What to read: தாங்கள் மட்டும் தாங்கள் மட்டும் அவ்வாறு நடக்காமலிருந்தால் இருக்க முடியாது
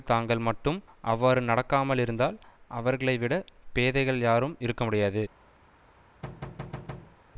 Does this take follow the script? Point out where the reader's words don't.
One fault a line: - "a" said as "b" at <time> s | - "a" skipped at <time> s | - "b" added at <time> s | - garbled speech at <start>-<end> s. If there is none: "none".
- "தாங்கள் மட்டும் அவ்வாறு நடக்காமலிருந்தால்" said as "அவ்வாறு நடக்காமலிருந்தால் அவர்களைவிடப் பேதைகள் யாரும்" at 1.0 s